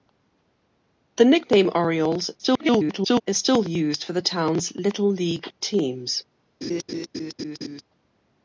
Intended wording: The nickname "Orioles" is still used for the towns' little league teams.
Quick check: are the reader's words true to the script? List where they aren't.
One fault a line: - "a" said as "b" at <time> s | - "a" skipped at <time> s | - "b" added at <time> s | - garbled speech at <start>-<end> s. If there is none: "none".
- garbled speech at 2.4-3.2 s